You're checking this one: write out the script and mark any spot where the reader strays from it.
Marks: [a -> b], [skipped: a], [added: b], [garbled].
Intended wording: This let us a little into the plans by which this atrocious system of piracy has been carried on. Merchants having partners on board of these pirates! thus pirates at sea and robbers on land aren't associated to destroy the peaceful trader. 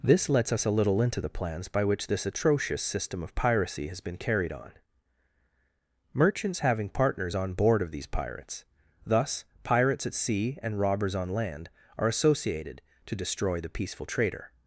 This [let -> lets] us a little into the plans by which this atrocious system of piracy has been carried on. Merchants having partners on board of these pirates! thus pirates at sea and robbers on land [aren't -> are] associated to destroy the peaceful trader.